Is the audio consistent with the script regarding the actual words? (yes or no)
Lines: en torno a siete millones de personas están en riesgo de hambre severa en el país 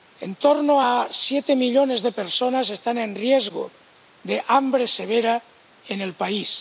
yes